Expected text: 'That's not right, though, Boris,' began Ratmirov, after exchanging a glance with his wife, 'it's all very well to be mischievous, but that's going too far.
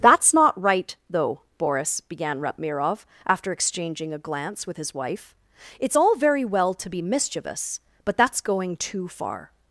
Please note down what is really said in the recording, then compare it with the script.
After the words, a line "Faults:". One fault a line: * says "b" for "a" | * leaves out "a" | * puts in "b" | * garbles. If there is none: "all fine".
'That's not right, though, Boris,' began Ratmirov, after exchanging a glance with his wife, 'it's all very well to be mischievous, but that's going too far.
Faults:
all fine